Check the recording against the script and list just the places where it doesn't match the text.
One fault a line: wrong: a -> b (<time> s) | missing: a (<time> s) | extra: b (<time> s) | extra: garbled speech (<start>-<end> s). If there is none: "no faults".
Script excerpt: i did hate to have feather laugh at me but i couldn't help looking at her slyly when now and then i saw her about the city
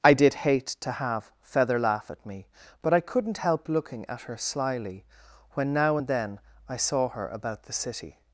no faults